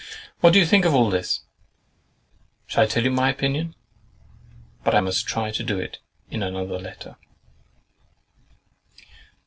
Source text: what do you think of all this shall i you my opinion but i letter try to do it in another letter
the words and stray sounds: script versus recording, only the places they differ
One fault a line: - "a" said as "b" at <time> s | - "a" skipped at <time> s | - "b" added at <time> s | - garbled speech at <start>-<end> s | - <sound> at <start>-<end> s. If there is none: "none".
- "tell" added at 2.9 s
- "letter" said as "must" at 5.0 s